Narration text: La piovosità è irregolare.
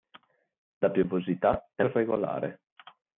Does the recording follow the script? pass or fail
pass